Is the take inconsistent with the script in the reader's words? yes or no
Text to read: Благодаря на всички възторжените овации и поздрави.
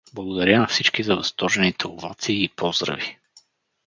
yes